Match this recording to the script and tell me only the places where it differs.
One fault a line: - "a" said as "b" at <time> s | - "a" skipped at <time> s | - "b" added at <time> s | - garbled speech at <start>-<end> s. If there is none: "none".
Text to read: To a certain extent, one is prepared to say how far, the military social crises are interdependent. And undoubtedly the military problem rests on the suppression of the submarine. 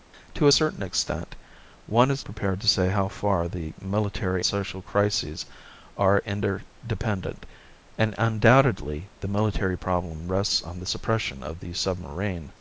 none